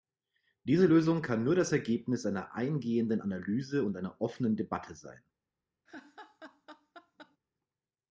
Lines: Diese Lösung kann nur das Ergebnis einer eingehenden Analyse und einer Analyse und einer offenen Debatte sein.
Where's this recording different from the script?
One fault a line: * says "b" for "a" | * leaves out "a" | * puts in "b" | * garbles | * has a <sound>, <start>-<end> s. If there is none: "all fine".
* leaves out "Analyse und einer"
* has a laugh, 5.9-7.4 s